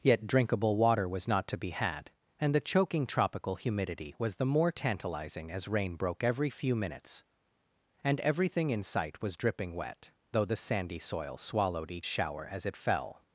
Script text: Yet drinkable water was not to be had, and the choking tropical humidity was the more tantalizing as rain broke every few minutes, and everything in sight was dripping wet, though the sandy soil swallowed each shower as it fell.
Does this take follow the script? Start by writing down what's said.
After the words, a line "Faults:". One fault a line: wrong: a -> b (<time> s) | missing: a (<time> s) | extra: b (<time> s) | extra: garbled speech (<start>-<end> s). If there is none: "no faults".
Yet drinkable water was not to be had, and the choking tropical humidity was the more tantalizing as rain broke every few minutes, and everything in sight was dripping wet, though the sandy soil swallowed each shower as it fell.
Faults:
no faults